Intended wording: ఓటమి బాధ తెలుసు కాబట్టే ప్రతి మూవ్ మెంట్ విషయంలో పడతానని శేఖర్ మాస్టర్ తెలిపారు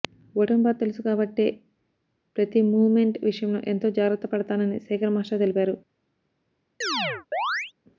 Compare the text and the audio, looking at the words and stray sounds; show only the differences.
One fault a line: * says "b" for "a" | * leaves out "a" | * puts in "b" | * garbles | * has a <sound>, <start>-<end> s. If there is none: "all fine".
* puts in "ఎంతో జాగ్రత్త"
* has a chirp, 6.8-7.7 s